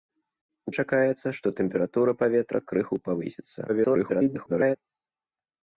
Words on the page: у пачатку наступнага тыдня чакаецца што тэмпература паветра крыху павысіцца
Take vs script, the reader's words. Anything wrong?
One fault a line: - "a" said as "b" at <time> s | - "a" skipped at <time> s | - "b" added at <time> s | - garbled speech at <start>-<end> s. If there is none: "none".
- "пачатку наступнага тыдня" skipped at 0.7 s
- garbled speech at 3.7-4.8 s